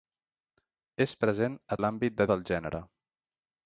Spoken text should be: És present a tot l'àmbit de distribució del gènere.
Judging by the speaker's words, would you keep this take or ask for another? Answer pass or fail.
fail